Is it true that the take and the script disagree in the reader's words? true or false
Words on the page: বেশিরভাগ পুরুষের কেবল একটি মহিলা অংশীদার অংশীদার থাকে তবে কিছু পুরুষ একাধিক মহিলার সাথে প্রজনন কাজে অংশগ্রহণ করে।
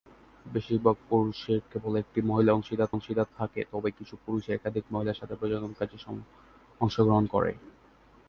false